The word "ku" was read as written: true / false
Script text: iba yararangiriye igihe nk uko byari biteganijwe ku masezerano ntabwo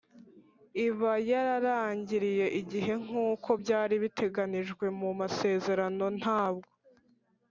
false